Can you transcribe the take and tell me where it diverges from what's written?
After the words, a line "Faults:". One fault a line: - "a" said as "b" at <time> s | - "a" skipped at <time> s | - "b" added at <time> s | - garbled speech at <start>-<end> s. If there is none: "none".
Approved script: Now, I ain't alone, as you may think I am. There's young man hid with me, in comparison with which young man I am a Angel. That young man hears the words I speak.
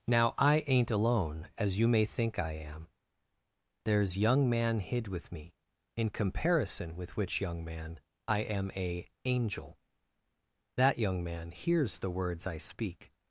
Now, I ain't alone, as you may think I am. There's young man hid with me, in comparison with which young man I am a Angel. That young man hears the words I speak.
Faults:
none